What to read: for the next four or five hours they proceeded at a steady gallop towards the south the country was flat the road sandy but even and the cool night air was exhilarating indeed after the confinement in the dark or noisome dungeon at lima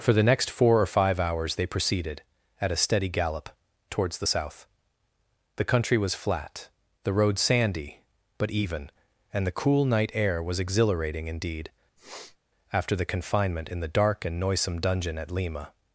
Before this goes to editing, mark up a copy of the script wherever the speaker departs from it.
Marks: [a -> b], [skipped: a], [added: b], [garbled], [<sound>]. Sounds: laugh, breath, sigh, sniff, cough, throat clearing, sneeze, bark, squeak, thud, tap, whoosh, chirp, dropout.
for the next four or five hours they proceeded at a steady gallop towards the south the country was flat the road sandy but even and the cool night air was exhilarating indeed [sniff] after the confinement in the dark [or -> and] noisome dungeon at lima